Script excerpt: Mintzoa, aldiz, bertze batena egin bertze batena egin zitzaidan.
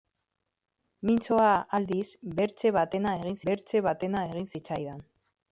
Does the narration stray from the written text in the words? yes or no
no